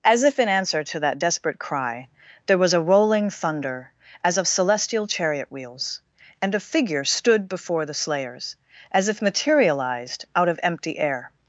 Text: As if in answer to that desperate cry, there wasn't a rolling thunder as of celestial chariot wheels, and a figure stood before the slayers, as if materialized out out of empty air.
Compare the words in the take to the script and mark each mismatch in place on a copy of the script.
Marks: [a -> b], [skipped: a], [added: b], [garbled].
As if in answer to that desperate cry, there [wasn't -> was] a rolling thunder as of celestial chariot wheels, and a figure stood before the slayers, as if materialized out [skipped: out] of empty air.